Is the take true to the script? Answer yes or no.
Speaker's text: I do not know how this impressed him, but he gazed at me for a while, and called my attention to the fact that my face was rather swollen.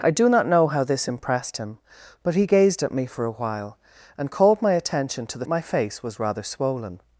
no